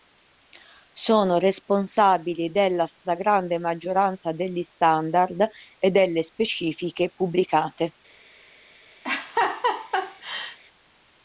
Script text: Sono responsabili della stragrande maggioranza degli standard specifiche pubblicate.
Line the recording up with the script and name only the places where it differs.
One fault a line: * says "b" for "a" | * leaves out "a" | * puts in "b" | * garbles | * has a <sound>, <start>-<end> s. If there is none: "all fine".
* puts in "e delle"
* has a laugh, 9.0-10.6 s